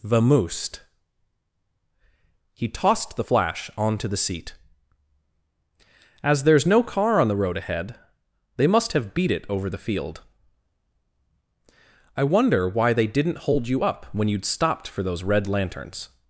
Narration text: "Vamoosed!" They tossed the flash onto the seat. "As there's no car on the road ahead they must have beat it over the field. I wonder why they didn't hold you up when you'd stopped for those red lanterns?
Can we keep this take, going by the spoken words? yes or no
no